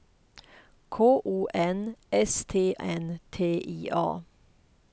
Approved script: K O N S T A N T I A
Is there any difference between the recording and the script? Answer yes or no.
yes